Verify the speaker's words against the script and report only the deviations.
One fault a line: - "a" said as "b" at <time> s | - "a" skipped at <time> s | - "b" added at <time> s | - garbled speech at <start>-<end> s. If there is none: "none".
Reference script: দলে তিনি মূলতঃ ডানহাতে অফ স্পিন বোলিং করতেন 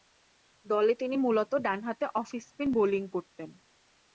none